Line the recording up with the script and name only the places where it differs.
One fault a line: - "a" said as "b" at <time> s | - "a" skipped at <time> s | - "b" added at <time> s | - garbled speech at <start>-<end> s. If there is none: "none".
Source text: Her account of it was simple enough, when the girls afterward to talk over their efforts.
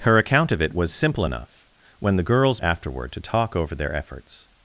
none